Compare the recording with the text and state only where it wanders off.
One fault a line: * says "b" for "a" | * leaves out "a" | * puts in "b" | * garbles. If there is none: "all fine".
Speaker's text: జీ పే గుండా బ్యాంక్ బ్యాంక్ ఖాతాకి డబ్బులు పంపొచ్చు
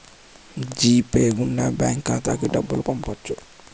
* leaves out "బ్యాంక్"